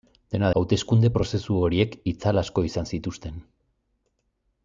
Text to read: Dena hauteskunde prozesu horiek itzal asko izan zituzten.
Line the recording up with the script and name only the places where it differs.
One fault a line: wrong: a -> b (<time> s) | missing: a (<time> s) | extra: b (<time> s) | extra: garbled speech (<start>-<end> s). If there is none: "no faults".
no faults